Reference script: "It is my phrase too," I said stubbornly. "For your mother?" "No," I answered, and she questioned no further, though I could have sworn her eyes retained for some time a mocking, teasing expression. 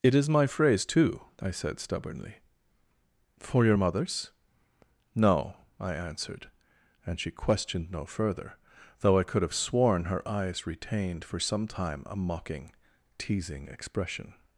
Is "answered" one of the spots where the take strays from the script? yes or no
no